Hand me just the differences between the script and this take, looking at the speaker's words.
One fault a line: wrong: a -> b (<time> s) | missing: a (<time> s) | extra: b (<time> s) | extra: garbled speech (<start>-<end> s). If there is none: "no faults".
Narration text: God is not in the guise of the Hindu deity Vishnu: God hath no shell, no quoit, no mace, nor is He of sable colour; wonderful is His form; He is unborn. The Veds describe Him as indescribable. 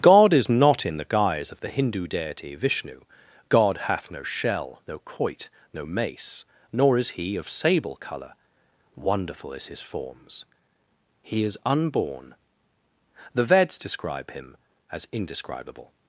wrong: form -> forms (9.8 s)